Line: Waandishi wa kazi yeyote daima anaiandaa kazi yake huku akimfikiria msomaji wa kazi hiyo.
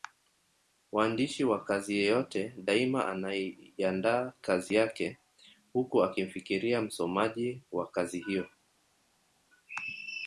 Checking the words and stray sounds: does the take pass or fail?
pass